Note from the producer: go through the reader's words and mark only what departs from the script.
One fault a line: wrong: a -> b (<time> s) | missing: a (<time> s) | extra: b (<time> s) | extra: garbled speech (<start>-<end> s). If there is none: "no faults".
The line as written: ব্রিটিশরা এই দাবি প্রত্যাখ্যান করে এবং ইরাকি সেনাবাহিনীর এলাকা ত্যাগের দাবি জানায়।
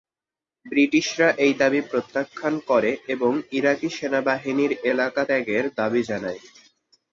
no faults